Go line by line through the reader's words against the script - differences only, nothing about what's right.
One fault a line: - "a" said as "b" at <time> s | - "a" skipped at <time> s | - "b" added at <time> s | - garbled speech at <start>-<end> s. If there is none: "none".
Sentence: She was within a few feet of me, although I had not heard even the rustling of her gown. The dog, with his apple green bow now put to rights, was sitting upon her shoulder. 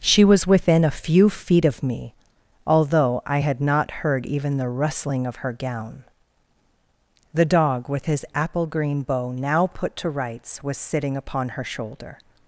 none